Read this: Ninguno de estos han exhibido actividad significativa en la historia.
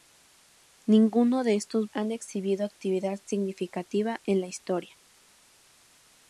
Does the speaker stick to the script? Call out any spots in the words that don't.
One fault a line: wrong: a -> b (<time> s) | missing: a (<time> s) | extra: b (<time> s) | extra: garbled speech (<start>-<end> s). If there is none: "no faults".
no faults